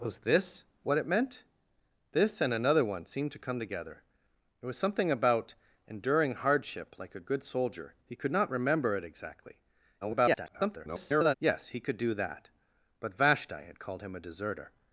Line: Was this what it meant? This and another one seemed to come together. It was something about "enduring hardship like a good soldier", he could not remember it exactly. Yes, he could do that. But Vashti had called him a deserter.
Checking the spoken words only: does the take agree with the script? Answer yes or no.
no